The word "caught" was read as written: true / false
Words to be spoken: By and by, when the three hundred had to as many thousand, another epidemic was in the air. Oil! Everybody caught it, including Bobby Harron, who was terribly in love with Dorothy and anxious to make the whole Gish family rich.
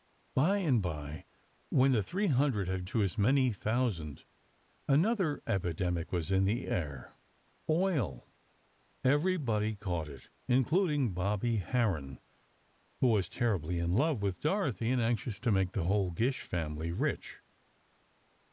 true